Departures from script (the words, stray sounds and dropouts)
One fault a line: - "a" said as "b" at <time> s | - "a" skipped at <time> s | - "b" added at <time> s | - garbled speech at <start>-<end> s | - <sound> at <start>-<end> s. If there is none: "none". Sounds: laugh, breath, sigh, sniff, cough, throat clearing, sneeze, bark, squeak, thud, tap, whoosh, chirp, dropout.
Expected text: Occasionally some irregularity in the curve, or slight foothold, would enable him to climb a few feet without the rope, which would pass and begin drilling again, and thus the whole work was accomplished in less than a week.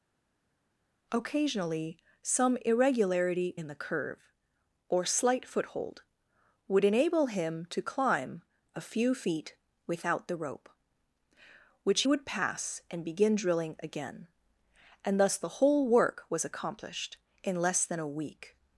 none